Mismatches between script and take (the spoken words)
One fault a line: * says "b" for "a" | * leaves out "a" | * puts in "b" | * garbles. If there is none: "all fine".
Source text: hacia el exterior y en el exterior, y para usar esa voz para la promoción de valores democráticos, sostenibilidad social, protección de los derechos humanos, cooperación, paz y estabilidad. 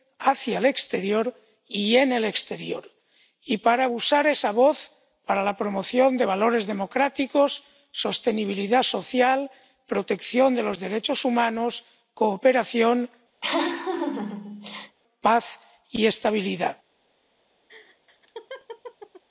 all fine